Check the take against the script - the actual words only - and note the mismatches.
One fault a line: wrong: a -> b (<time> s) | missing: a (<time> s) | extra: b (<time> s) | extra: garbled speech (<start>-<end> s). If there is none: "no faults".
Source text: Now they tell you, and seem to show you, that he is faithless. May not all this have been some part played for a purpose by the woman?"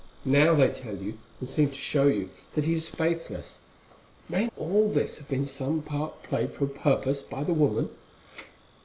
missing: not (4.5 s)